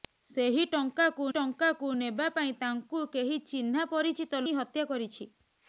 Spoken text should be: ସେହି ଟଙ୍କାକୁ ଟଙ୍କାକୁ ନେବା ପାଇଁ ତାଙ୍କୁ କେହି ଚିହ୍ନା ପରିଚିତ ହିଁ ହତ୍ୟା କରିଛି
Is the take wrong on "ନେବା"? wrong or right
right